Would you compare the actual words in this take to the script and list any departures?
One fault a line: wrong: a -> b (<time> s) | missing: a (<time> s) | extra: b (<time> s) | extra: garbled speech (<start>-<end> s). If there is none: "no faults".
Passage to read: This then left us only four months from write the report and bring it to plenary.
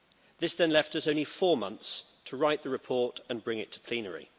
wrong: from -> to (2.2 s)